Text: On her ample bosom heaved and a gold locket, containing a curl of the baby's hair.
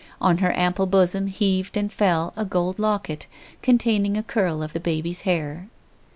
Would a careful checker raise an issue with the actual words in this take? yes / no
yes